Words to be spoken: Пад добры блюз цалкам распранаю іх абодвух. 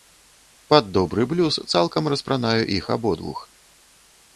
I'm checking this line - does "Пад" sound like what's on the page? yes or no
yes